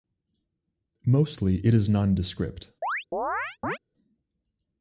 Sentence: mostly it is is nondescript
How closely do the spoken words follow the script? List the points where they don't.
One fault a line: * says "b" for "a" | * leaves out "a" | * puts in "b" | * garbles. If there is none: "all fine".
* leaves out "is"